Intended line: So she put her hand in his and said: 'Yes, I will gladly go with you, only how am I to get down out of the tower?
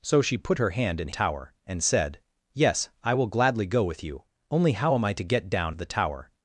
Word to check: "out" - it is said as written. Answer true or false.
false